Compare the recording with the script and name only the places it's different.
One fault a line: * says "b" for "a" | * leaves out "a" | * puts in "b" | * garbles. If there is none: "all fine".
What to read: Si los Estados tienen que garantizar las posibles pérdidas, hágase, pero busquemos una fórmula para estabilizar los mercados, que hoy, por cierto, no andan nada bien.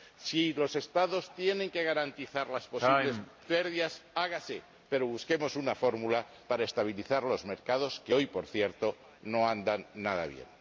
all fine